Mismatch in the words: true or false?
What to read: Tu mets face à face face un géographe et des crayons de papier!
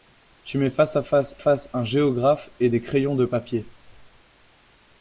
false